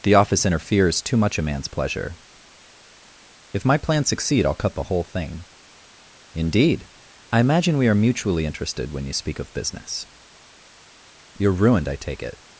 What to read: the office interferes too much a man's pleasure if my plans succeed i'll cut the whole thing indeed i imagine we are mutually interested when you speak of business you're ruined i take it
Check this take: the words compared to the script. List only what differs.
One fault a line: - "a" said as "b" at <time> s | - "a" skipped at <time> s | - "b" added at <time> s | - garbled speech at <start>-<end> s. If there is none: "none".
none